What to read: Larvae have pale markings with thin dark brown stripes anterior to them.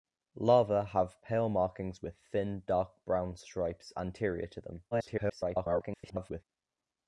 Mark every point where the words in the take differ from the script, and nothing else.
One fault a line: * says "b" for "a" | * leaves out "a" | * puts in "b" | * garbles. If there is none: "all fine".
* garbles